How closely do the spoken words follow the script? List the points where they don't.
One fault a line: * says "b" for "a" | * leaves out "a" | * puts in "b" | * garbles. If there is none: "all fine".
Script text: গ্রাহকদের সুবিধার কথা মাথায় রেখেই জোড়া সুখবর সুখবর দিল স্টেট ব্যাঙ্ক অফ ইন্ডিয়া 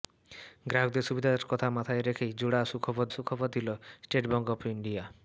all fine